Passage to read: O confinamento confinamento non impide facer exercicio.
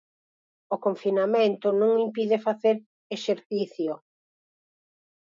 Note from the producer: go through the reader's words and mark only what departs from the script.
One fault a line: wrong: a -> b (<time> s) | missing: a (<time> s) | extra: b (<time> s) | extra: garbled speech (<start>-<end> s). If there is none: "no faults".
missing: confinamento (1.7 s)